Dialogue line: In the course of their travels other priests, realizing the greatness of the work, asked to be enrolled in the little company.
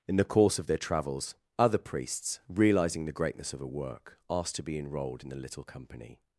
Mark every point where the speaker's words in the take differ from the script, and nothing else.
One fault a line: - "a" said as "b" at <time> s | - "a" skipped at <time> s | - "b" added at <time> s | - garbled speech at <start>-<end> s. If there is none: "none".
- "the" said as "a" at 3.6 s